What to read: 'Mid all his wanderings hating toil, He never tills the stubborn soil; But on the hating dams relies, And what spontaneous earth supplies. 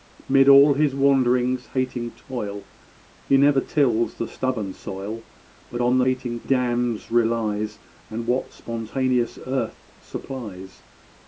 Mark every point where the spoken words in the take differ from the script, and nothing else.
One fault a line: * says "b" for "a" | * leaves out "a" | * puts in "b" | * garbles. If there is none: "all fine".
all fine